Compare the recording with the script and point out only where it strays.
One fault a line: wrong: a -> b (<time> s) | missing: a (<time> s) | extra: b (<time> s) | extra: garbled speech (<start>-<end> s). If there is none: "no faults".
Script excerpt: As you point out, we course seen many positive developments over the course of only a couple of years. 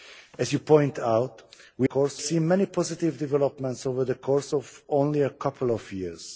no faults